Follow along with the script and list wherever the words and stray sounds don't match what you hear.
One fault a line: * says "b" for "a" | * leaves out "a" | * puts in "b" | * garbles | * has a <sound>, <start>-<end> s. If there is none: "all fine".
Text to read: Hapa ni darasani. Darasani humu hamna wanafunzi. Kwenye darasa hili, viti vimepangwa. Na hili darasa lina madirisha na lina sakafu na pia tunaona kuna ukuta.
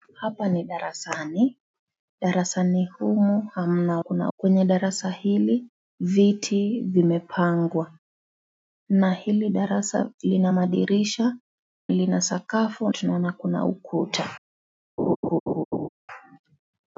* says "kuna" for "wanafunzi"
* leaves out "na"
* leaves out "na pia"
* has a laugh, 15.0-15.9 s